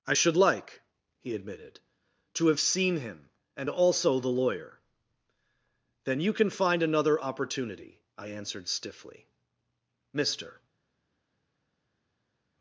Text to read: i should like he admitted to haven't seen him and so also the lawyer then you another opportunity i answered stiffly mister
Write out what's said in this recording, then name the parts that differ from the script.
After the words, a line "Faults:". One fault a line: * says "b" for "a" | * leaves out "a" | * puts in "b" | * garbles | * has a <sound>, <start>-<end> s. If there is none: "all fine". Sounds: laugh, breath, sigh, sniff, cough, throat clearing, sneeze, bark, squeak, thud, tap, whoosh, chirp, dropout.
i should like he admitted to have seen him and also the lawyer then you can find another opportunity i answered stiffly mister
Faults:
* says "have" for "haven't"
* leaves out "so"
* puts in "can find"